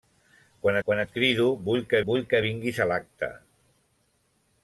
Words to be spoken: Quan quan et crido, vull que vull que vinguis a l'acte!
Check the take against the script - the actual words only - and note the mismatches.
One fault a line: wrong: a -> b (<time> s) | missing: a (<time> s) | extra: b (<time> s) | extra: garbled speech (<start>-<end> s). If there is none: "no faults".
no faults